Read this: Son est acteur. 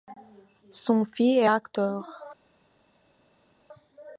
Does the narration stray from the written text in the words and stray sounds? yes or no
yes